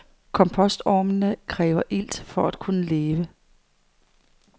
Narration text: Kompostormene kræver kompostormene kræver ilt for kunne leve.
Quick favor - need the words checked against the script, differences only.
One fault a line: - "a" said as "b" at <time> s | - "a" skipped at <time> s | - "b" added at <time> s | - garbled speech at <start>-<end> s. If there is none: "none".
- "kompostormene kræver" skipped at 1.8 s
- "at" added at 2.5 s